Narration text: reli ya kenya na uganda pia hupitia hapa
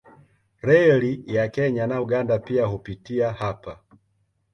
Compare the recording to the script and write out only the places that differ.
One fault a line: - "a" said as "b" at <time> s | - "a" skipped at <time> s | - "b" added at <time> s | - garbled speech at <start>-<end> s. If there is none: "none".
none